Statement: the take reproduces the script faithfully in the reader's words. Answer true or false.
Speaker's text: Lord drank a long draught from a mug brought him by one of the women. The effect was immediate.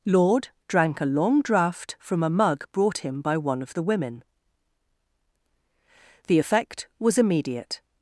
true